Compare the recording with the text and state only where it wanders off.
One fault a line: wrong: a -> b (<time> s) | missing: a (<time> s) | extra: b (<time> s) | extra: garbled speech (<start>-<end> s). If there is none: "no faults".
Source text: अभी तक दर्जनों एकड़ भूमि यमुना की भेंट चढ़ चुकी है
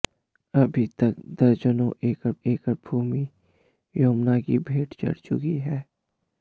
extra: एकड़ (2.5 s)